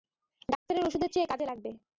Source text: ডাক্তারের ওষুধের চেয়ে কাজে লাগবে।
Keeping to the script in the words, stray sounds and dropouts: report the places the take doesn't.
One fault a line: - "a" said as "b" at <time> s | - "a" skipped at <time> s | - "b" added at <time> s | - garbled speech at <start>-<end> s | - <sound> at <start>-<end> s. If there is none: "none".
- dropout at 0.6-0.7 s